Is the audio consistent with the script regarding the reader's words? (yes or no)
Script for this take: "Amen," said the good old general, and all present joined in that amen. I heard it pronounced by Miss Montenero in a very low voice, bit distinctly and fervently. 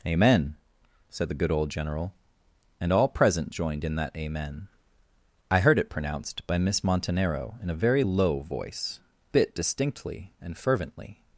yes